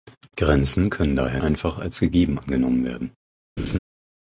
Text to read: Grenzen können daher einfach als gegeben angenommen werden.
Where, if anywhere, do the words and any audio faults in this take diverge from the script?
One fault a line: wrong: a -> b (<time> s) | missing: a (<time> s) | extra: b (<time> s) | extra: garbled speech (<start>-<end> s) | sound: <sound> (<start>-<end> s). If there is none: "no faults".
sound: laugh (3.6-3.8 s)